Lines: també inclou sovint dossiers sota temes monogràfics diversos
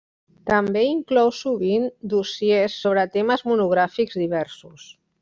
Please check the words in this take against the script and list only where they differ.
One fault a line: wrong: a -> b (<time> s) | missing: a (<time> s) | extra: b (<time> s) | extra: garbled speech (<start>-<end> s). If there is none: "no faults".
wrong: sota -> sobre (2.8 s)